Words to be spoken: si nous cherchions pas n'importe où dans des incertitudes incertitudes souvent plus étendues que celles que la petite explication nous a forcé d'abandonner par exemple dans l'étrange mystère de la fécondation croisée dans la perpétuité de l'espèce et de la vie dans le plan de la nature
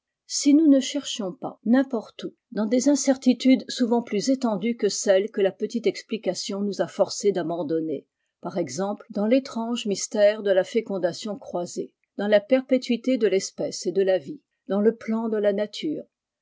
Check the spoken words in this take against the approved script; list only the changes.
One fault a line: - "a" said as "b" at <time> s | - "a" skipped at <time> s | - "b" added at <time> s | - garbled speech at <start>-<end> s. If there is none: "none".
- "ne" added at 0.7 s
- "incertitudes" skipped at 3.7 s